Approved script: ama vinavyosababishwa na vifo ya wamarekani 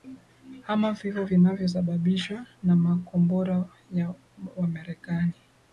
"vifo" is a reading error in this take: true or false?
true